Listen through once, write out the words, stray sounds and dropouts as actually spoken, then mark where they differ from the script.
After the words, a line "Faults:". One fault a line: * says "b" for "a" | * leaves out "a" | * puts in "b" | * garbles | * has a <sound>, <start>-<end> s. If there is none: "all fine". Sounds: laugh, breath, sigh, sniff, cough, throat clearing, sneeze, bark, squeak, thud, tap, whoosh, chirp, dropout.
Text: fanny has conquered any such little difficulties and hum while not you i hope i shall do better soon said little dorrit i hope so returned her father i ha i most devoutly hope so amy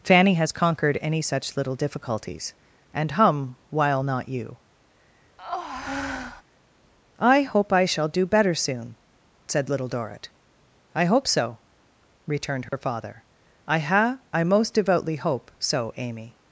fanny has conquered any such little difficulties and hum while not you i hope i shall do better soon said little dorrit i hope so returned her father i ha i most devoutly hope so amy
Faults:
* has a breath, 5.4-6.4 s
* has a dropout, 12.7-12.7 s